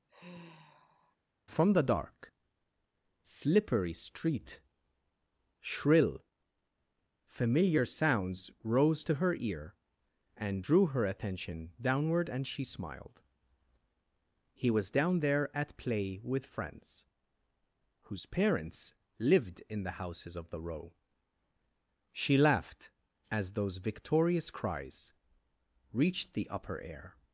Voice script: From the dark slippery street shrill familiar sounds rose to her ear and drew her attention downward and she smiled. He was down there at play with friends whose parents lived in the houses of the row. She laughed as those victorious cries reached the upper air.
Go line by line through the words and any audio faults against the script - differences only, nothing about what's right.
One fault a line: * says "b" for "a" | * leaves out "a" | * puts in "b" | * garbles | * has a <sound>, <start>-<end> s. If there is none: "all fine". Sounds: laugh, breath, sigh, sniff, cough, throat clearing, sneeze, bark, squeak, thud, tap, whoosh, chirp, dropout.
* has a sigh, 0.1-1.2 s